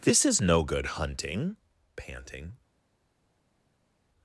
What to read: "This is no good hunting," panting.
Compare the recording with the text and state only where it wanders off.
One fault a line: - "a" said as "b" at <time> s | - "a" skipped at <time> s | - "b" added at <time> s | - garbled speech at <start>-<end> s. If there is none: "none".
none